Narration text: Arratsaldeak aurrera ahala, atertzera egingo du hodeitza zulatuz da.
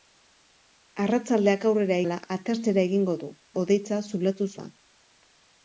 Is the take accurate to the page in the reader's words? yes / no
yes